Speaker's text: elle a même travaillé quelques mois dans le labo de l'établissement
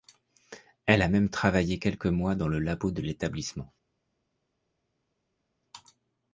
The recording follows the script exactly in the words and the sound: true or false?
true